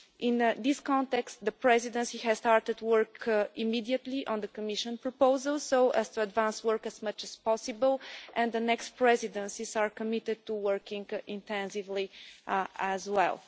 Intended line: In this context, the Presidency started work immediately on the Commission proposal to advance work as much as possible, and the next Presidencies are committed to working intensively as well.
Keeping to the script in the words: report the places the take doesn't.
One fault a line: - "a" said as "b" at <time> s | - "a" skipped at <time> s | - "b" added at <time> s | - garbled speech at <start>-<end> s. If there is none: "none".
- "has" added at 2.2 s
- "so as" added at 5.6 s